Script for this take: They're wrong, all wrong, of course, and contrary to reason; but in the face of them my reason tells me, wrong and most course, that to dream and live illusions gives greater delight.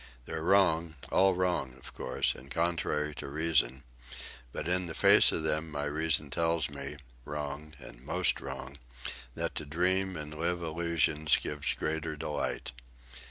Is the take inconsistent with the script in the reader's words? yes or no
yes